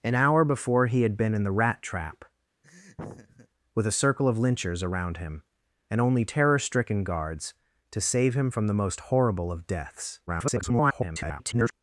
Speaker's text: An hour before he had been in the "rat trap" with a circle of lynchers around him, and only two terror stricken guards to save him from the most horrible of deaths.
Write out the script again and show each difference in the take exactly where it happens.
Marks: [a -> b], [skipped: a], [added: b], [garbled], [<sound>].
An hour before he had been in the "rat trap" [laugh] with a circle of lynchers around him, and only [skipped: two] terror stricken guards to save him from the most horrible of deaths. [garbled]